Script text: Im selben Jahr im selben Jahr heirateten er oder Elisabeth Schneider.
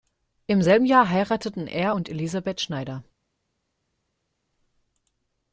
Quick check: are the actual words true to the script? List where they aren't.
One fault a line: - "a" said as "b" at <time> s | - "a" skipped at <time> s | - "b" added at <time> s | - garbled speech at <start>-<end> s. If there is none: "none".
- "im selben Jahr" skipped at 1.1 s
- "oder" said as "und" at 1.9 s